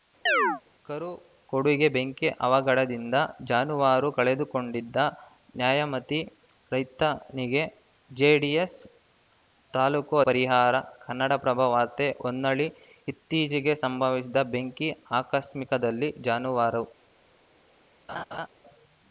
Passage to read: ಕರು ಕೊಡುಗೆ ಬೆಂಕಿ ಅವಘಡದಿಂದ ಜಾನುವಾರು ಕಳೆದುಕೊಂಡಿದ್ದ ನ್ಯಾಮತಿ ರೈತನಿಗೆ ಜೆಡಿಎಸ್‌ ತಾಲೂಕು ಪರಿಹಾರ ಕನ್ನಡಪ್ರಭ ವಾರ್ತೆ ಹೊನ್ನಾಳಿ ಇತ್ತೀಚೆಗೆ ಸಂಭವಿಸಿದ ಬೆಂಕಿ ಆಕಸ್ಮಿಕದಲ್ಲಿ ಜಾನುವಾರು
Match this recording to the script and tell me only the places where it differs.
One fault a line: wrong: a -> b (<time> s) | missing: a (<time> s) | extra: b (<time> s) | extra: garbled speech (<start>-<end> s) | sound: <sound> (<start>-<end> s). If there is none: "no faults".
sound: chirp (0.3-0.6 s)
sound: laugh (18.1-18.5 s)